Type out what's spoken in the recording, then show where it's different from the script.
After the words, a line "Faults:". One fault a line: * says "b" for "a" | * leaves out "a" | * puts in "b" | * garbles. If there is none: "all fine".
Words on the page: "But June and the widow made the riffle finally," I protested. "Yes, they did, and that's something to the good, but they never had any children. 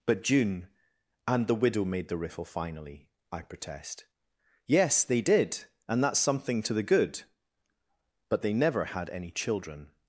"But June and the widow made the riffle finally," I protest. "Yes, they did, and that's something to the good, but they never had any children.
Faults:
* says "protest" for "protested"